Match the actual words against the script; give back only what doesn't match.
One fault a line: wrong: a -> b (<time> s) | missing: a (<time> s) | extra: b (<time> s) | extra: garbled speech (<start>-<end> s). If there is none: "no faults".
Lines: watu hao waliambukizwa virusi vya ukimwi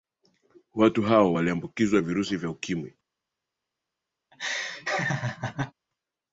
no faults